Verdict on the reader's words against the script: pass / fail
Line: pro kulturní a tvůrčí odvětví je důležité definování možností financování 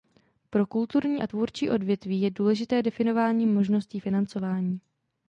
pass